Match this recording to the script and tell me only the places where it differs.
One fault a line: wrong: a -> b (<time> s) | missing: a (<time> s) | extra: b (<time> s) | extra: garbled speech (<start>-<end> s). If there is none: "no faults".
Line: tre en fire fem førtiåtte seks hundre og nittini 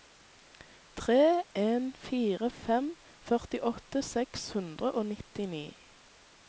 no faults